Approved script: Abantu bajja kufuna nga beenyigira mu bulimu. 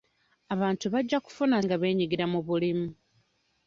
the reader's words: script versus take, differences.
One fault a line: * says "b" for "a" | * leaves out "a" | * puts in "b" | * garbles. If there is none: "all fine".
all fine